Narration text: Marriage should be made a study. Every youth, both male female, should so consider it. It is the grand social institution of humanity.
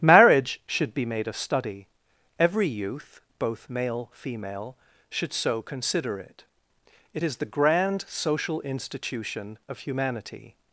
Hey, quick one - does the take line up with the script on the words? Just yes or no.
yes